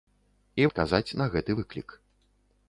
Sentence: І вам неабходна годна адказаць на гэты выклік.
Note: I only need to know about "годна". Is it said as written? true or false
false